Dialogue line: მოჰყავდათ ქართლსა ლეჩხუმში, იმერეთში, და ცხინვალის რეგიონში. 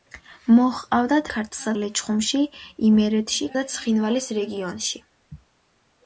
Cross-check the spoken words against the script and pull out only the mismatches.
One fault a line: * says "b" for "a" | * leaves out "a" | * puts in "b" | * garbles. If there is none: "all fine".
all fine